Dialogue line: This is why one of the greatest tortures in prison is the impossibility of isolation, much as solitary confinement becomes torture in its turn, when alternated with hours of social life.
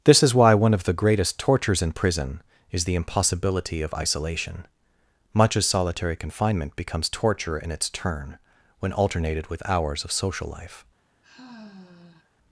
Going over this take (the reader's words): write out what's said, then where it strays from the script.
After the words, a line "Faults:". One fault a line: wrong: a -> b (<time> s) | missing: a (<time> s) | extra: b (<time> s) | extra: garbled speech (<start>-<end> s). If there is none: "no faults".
This is why one of the greatest tortures in prison is the impossibility of isolation, much as solitary confinement becomes torture in its turn, when alternated with hours of social life.
Faults:
no faults